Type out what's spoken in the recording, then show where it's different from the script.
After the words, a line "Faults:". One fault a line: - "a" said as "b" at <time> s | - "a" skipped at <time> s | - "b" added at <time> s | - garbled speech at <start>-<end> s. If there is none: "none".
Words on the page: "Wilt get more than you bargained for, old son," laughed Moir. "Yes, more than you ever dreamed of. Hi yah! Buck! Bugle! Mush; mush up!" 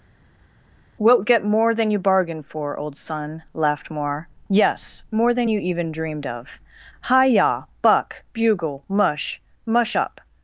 "Wilt get more than you bargained for, old son," laughed Moir. "Yes, more than you even dreamed of. Hi yah! Buck! Bugle! Mush; mush up!"
Faults:
- "ever" said as "even" at 5.6 s